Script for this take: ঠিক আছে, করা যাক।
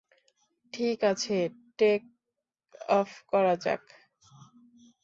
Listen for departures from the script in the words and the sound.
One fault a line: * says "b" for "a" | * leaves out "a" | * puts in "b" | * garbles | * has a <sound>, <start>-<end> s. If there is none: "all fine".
* puts in "টেক অফ"